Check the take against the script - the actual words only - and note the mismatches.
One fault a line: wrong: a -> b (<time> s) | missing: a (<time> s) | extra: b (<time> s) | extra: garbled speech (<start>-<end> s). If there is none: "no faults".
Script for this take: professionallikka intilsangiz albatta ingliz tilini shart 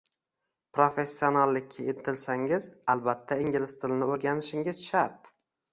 extra: o'rganishingiz (4.1 s)